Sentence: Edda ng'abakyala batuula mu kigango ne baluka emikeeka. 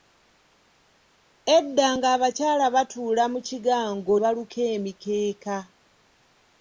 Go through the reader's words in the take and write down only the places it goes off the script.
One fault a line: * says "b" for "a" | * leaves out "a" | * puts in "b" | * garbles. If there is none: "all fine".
* leaves out "ne"